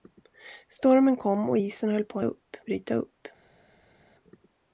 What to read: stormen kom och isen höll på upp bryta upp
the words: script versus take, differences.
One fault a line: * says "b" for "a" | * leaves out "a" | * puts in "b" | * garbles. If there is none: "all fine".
all fine